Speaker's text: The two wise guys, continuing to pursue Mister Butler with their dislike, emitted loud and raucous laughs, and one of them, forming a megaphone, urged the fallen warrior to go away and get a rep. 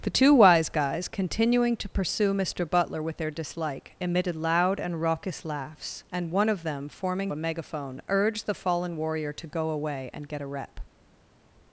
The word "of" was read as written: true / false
true